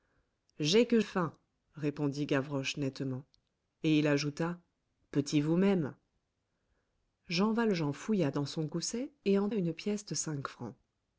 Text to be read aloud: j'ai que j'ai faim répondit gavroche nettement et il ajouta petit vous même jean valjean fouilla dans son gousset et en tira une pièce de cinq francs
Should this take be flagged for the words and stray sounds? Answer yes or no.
yes